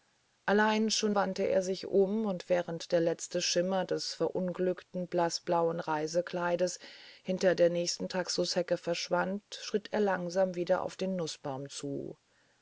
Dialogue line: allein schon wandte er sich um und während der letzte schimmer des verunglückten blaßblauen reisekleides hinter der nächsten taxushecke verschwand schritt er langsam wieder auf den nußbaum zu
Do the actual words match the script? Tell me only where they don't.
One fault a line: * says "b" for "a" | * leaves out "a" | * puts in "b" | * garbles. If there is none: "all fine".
all fine